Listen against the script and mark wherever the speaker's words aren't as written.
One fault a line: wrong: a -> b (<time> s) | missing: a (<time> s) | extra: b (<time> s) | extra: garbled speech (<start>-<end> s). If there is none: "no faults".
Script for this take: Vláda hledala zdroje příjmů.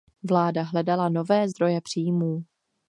extra: nové (1.1 s)